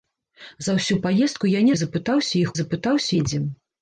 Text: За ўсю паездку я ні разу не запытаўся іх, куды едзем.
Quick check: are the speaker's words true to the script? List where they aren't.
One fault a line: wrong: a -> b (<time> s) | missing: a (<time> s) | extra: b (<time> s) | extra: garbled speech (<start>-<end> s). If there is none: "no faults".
missing: разу (1.8 s)
wrong: куды -> запытаўся (2.6 s)